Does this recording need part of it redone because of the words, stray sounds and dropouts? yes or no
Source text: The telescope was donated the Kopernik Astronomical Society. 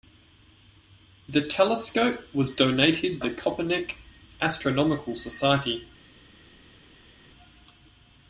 no